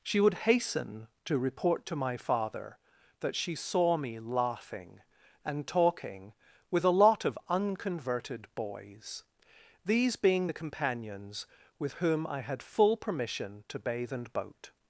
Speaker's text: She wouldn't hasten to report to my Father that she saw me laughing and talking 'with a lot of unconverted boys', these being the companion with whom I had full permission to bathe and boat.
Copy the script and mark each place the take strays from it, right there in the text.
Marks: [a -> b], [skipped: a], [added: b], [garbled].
She [wouldn't -> would] hasten to report to my Father that she saw me laughing and talking 'with a lot of unconverted boys', these being the [companion -> companions] with whom I had full permission to bathe and boat.